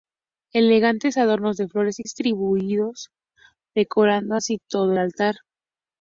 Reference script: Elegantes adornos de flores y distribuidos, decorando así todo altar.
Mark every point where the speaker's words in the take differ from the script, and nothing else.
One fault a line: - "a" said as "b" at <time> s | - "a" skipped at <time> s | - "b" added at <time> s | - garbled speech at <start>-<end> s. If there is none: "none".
none